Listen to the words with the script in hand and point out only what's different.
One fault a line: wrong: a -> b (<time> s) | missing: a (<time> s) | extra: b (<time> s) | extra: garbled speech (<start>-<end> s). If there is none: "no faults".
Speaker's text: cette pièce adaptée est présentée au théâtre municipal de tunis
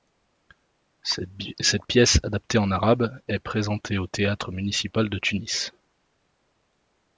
extra: en arabe (2.6 s)